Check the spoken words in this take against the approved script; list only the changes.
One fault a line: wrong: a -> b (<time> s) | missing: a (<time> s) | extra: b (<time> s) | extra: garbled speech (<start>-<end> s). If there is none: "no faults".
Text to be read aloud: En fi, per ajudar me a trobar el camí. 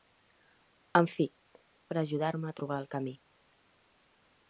no faults